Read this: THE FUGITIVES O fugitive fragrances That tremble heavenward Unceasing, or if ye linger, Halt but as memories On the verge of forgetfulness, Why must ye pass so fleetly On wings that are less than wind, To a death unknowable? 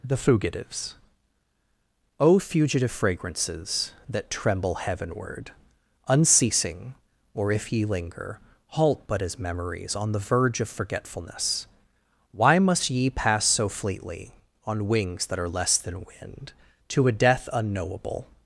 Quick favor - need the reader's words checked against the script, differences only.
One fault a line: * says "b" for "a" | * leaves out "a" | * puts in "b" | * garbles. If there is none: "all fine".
all fine